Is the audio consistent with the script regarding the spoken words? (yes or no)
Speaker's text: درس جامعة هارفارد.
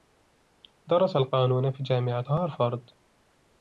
no